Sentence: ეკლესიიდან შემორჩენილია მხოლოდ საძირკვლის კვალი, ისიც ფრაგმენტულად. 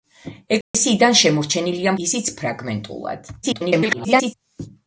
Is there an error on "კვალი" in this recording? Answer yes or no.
yes